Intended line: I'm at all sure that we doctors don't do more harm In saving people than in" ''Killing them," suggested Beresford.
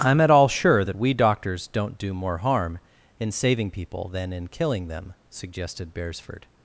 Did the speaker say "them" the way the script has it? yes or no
yes